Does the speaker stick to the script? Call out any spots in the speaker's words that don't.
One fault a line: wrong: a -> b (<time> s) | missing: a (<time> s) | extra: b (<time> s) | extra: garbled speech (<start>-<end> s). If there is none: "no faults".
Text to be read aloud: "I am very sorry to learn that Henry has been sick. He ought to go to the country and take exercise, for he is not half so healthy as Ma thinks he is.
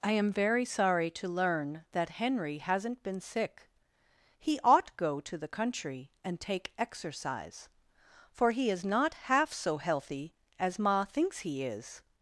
wrong: has -> hasn't (2.6 s)
missing: to (5.0 s)